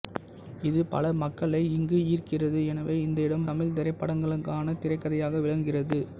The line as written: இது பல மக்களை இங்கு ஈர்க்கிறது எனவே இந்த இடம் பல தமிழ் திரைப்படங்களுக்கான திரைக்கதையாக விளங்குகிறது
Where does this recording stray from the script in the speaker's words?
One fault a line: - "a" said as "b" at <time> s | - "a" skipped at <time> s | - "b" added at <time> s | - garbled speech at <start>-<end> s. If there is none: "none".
- "பல" skipped at 3.5 s